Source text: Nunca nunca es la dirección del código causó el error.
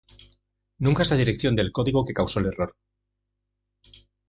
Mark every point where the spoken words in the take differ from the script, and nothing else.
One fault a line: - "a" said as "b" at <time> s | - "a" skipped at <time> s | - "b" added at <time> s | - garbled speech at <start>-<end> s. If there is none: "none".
- "nunca" skipped at 1.0 s
- "que" added at 2.0 s